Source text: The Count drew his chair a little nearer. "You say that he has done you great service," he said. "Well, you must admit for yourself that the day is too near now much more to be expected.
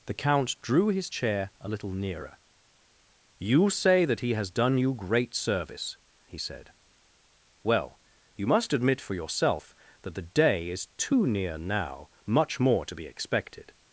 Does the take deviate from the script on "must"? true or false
false